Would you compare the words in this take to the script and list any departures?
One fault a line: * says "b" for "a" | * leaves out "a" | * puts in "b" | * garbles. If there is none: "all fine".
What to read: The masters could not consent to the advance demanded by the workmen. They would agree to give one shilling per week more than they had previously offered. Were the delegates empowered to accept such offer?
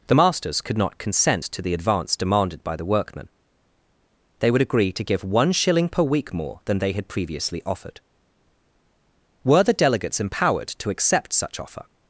all fine